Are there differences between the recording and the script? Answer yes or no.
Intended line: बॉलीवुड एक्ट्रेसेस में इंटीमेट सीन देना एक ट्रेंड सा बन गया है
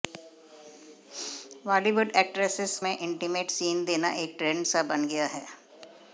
no